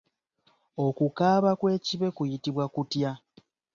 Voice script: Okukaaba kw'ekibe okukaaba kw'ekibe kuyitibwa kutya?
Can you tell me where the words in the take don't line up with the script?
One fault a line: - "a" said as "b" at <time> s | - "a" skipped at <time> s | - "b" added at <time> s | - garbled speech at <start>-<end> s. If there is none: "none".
- "okukaaba kw'ekibe" skipped at 2.1 s